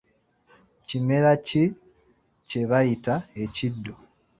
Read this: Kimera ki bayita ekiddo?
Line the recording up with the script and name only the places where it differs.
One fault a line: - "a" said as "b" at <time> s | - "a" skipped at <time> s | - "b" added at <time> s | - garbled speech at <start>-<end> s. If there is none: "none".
- "kye" added at 2.5 s